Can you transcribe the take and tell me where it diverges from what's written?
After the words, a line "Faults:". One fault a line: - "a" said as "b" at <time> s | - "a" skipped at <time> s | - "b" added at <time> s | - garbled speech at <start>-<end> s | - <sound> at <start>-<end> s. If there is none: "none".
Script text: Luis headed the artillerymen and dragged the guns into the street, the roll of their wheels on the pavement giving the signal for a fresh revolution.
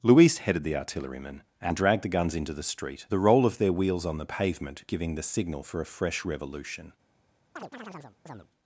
Luis headed the artillerymen and dragged the guns into the street, the roll of their wheels on the pavement giving the signal for a fresh revolution.
Faults:
- chirp at 7.6-8.5 s